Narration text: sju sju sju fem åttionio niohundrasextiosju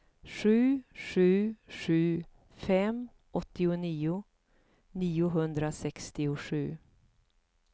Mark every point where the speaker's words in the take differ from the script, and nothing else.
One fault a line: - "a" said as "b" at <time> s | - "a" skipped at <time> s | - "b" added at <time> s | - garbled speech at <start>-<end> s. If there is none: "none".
none